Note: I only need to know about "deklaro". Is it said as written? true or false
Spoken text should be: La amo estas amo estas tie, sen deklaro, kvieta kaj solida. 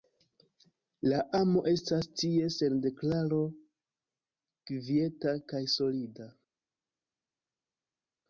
true